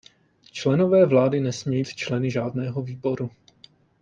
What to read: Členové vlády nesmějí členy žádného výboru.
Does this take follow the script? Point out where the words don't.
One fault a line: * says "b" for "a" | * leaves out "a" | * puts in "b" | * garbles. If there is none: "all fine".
all fine